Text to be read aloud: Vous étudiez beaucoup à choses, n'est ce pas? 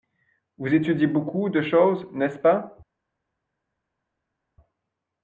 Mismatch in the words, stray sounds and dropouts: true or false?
true